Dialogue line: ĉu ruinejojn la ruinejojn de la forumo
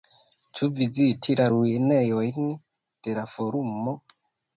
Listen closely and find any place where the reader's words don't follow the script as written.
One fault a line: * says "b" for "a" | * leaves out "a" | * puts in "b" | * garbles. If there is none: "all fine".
* says "viziti" for "ruinejojn"